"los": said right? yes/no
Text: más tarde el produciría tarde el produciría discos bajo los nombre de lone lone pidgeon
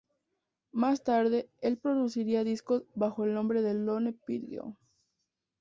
no